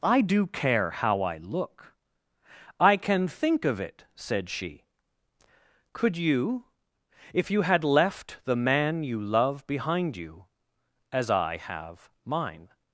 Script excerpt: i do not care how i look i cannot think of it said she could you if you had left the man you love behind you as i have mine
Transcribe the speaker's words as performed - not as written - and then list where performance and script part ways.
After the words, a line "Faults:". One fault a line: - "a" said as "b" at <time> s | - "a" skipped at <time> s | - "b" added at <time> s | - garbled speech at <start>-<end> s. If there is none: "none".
i do care how i look i can think of it said she could you if you had left the man you love behind you as i have mine
Faults:
- "not" skipped at 0.5 s
- "cannot" said as "can" at 3.0 s